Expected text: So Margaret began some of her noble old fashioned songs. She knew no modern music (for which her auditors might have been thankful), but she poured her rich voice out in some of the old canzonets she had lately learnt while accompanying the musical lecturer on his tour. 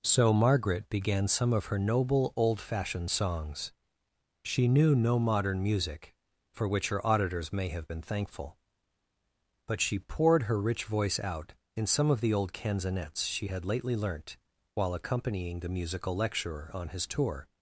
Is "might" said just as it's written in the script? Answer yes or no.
no